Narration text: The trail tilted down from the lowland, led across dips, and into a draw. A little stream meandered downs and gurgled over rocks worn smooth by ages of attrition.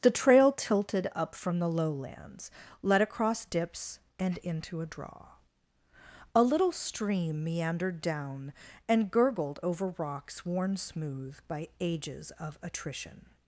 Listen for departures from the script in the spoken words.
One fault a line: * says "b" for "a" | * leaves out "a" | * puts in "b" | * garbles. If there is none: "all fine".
* says "up" for "down"
* says "lowlands" for "lowland"
* says "down" for "downs"